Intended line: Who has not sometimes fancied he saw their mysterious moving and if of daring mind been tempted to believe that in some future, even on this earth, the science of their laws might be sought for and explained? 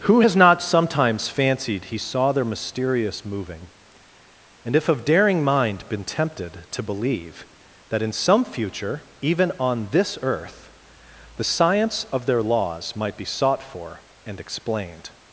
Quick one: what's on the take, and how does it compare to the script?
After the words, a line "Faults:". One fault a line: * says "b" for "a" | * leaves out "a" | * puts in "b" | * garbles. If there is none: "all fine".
Who has not sometimes fancied he saw their mysterious moving and if of daring mind been tempted to believe that in some future, even on this earth, the science of their laws might be sought for and explained?
Faults:
all fine